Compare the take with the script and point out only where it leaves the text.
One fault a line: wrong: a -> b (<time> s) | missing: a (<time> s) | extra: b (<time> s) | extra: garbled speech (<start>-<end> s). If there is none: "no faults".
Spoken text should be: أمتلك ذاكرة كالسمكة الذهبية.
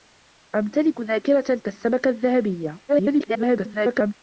extra: garbled speech (2.9-4.1 s)